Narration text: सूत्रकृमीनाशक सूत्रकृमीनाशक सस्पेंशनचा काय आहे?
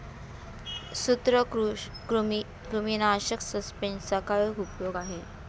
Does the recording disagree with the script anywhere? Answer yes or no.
yes